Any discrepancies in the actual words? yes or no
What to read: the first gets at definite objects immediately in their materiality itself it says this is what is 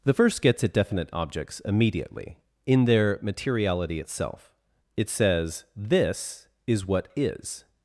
no